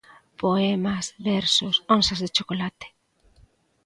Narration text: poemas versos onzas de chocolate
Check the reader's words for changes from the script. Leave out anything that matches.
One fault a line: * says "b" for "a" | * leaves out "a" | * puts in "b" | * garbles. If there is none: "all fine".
all fine